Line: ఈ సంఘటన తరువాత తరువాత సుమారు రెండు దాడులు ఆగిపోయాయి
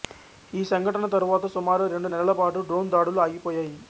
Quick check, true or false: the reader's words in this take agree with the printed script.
false